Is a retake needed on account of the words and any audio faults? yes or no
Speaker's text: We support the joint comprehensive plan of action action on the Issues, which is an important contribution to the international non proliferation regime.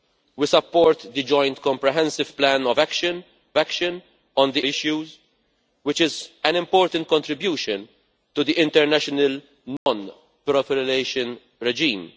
yes